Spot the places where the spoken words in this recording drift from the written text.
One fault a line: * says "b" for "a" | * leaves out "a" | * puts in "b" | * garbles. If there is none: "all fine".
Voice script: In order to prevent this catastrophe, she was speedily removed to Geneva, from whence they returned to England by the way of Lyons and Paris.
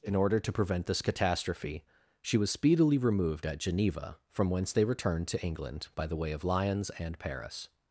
* says "at" for "to"